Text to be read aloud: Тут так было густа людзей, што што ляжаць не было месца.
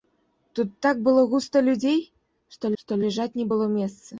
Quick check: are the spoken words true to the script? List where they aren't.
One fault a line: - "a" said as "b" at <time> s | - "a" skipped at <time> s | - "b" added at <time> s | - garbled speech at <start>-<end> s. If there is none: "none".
none